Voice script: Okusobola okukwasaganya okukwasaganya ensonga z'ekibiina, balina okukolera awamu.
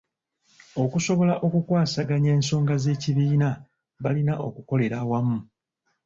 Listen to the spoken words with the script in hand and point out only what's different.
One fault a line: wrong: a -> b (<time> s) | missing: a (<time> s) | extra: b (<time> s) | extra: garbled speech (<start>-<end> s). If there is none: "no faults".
missing: okukwasaganya (2.3 s)